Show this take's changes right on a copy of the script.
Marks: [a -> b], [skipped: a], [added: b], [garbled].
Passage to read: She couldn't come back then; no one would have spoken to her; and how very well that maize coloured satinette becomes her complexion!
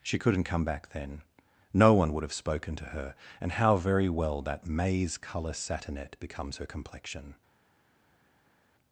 She couldn't come back then; no one would have spoken to her; and how very well that maize [coloured -> colour] satinette becomes her complexion!